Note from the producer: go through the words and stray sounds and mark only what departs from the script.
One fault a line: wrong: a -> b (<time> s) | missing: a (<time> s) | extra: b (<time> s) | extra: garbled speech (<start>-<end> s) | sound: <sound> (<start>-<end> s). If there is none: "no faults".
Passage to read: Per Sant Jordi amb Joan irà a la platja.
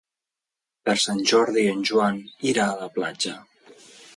wrong: amb -> en (1.7 s)